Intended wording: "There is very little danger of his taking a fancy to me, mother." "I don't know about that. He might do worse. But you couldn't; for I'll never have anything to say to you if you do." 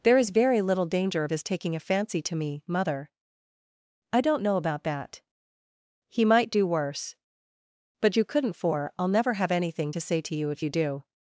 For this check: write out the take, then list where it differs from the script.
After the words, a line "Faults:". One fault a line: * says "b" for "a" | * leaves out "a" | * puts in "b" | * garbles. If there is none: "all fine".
"There is very little danger of his taking a fancy to me, mother." "I don't know about that. He might do worse. But you couldn't; for I'll never have anything to say to you if you do."
Faults:
all fine